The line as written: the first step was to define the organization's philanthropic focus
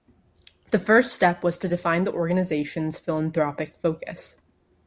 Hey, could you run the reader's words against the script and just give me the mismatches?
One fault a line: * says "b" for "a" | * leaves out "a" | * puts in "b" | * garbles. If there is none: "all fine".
all fine